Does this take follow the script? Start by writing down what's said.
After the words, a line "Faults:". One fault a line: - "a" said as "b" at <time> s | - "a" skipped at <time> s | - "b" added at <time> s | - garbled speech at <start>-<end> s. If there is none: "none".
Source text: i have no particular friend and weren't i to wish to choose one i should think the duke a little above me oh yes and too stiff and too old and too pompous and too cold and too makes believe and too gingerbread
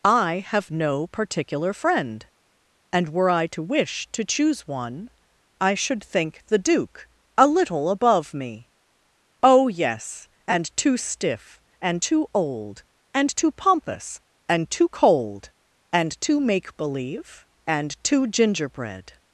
i have no particular friend and were i to wish to choose one i should think the duke a little above me oh yes and too stiff and too old and too pompous and too cold and too make believe and too gingerbread
Faults:
- "weren't" said as "were" at 3.1 s
- "makes" said as "make" at 16.4 s